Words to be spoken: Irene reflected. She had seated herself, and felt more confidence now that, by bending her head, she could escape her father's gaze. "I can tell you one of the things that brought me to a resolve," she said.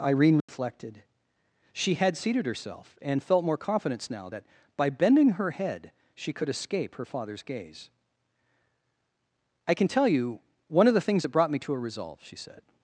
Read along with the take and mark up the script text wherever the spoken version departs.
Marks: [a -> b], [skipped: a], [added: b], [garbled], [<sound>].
Irene reflected. [dropout] She had seated herself, and felt more confidence now that, by bending her head, she could escape her father's gaze. "I can tell you one of the things that brought me to a resolve," she said.